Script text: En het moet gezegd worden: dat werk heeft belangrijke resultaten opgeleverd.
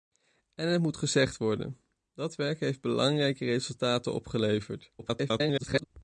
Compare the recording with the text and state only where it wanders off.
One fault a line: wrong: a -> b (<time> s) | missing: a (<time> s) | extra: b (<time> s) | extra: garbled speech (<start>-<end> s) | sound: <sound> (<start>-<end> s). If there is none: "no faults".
extra: garbled speech (5.0-5.8 s)